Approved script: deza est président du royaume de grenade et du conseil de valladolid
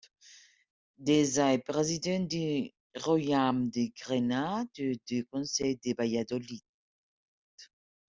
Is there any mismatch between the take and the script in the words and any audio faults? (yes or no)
no